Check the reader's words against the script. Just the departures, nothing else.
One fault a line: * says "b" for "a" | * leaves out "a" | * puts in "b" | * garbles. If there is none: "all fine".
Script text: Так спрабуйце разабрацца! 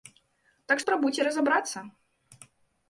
all fine